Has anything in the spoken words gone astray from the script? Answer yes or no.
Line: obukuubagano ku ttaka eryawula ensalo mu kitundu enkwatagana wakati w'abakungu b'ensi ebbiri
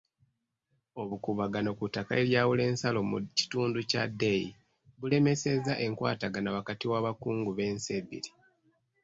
yes